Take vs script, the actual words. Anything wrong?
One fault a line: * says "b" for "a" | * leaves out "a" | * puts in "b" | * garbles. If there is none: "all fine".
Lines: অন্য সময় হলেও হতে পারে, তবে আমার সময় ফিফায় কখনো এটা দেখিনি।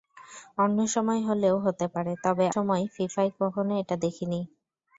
* leaves out "আমার"